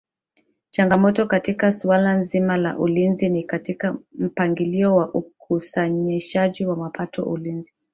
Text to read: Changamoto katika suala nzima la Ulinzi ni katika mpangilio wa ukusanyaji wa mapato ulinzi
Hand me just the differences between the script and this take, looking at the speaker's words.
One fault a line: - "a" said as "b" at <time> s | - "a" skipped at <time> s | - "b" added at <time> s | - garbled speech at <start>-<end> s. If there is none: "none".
none